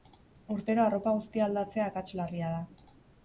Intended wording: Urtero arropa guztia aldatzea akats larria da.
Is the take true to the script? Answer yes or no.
yes